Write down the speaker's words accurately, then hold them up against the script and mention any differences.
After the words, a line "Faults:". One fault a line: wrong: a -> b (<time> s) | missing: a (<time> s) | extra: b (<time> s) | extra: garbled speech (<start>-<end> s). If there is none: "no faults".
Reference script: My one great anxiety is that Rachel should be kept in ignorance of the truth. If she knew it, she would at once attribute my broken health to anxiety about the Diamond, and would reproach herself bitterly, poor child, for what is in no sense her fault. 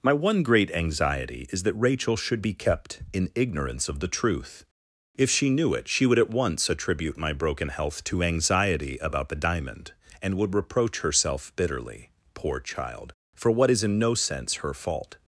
My one great anxiety is that Rachel should be kept in ignorance of the truth. If she knew it, she would at once attribute my broken health to anxiety about the Diamond, and would reproach herself bitterly, poor child, for what is in no sense her fault.
Faults:
no faults